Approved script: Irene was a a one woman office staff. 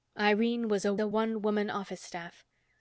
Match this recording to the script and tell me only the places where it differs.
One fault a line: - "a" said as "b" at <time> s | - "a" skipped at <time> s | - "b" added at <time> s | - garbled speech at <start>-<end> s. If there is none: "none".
none